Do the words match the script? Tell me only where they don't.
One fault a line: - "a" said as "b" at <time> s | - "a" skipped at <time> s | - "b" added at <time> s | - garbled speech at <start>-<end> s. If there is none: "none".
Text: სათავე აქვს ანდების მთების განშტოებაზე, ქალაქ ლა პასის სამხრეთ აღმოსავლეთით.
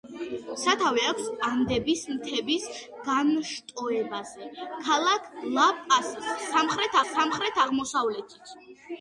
- "სამხრეთ" added at 7.1 s